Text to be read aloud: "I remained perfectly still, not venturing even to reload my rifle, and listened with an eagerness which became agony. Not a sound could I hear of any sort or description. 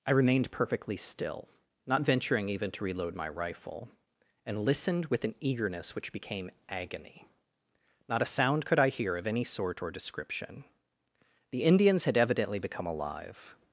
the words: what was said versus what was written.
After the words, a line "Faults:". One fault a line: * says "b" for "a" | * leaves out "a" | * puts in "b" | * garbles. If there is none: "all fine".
"I remained perfectly still, not venturing even to reload my rifle, and listened with an eagerness which became agony. Not a sound could I hear of any sort or description. The Indians had evidently become alive
Faults:
* puts in "The Indians had evidently become alive"